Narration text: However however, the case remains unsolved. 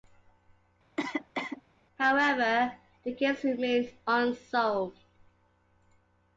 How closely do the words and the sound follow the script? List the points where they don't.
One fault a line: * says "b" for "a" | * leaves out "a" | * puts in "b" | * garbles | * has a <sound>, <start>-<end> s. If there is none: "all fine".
* has a cough, 1.0-1.6 s
* leaves out "however"